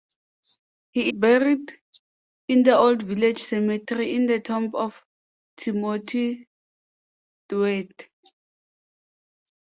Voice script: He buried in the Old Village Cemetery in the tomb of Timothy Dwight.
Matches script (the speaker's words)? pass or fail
pass